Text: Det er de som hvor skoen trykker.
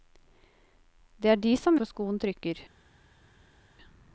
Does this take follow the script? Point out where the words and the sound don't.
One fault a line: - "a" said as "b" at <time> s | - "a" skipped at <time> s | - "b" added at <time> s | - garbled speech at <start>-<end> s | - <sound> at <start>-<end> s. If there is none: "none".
none